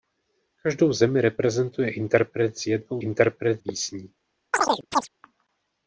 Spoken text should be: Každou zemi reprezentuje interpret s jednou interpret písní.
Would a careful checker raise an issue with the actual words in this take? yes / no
no